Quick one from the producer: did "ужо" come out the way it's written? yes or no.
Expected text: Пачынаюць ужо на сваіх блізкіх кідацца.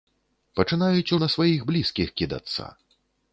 no